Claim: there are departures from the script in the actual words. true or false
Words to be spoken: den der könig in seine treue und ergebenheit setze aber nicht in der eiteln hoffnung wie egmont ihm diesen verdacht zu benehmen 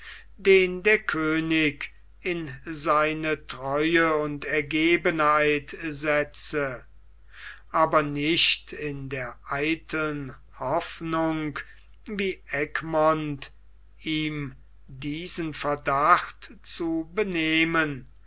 false